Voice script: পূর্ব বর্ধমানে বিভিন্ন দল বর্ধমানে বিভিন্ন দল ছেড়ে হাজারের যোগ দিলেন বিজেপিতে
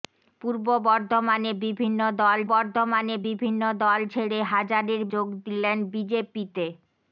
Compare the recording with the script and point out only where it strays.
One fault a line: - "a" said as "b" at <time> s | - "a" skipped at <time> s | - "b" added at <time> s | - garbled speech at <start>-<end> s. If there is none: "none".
none